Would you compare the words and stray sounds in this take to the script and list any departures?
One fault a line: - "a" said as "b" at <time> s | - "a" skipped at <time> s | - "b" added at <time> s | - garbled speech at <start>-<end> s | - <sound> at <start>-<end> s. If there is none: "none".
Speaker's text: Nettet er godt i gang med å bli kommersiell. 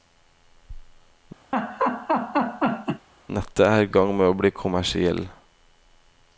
- laugh at 1.5-3.1 s
- "godt" skipped at 3.9 s